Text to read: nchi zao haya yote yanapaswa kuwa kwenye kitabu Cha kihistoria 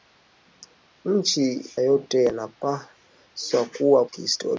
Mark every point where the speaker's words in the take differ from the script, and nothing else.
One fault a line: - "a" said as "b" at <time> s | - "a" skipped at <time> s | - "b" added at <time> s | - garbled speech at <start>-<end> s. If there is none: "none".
- "zao haya" skipped at 1.7 s
- "kwenye kitabu Cha" skipped at 4.1 s